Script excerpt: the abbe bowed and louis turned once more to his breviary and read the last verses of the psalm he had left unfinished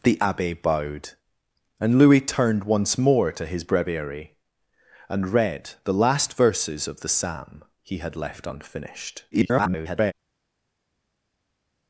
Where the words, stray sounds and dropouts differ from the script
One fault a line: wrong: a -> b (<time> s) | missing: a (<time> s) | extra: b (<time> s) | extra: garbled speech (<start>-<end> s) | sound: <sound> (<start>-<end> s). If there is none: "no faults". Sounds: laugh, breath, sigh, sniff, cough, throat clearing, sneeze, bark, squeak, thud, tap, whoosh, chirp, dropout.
extra: garbled speech (9.3-10.1 s)